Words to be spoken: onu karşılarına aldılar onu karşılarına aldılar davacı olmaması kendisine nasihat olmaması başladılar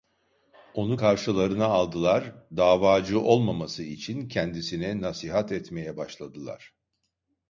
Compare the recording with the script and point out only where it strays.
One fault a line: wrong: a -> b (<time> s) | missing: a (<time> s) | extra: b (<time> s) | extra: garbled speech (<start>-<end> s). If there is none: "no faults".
missing: onu karşılarına aldılar (2.4 s)
extra: için (3.8 s)
wrong: olmaması -> etmeye (5.5 s)